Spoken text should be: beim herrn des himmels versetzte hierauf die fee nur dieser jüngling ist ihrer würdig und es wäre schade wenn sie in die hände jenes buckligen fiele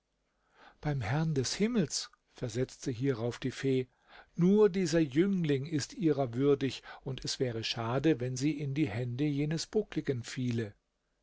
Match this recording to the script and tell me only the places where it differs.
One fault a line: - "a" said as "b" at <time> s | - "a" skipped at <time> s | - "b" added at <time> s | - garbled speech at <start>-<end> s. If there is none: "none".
none